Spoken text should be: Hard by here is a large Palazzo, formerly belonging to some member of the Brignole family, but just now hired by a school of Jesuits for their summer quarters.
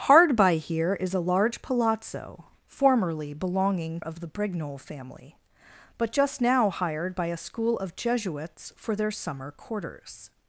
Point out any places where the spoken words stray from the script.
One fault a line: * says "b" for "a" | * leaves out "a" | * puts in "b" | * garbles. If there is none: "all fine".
* leaves out "to some member"